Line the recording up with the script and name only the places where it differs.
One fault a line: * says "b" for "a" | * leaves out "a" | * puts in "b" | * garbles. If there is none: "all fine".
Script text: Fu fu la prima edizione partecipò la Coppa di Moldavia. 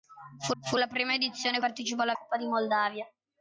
all fine